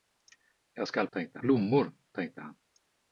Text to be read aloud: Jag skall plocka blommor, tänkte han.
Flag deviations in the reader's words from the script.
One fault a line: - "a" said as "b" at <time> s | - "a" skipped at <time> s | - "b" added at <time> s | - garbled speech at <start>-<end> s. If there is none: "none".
- "plocka" said as "tänkte" at 1.1 s